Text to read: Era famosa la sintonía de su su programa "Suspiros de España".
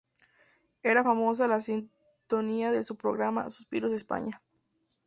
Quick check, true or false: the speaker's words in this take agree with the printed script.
false